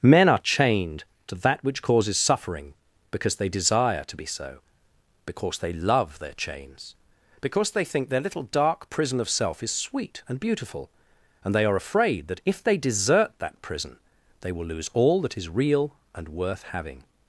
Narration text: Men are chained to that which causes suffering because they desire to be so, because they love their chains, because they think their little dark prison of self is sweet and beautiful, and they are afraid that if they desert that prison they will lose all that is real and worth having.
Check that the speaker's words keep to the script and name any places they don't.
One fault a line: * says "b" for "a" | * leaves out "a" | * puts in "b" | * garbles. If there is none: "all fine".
all fine